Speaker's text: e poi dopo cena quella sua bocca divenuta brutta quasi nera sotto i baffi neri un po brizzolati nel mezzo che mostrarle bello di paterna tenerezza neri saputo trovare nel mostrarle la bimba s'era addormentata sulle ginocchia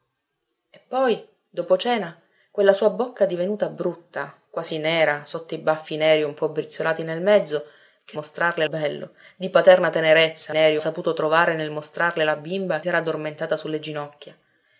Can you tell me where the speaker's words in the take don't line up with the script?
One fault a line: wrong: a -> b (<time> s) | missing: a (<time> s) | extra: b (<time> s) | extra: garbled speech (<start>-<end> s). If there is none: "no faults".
no faults